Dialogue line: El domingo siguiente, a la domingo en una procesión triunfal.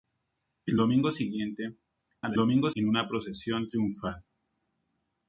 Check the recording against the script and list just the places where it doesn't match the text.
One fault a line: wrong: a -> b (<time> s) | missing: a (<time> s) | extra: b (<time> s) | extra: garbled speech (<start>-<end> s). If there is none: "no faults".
no faults